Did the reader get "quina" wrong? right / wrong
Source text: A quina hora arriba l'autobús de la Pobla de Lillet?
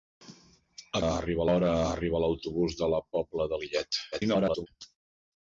wrong